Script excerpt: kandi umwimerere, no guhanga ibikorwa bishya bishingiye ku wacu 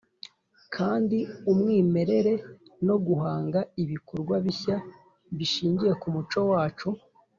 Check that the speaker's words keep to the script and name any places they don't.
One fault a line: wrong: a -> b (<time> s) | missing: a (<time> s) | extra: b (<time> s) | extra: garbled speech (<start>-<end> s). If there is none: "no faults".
extra: muco (6.1 s)